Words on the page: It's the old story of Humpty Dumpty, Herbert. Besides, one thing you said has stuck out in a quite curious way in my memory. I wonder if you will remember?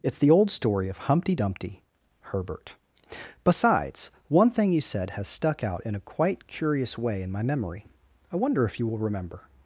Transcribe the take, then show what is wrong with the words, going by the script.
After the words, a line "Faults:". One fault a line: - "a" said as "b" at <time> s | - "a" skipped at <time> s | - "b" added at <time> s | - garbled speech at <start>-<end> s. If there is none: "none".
It's the old story of Humpty Dumpty, Herbert. Besides, one thing you said has stuck out in a quite curious way in my memory. I wonder if you will remember?
Faults:
none